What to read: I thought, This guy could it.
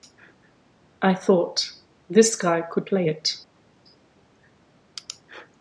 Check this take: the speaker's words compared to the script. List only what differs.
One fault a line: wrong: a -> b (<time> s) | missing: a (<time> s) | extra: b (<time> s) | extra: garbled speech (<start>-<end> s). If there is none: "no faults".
extra: play (2.8 s)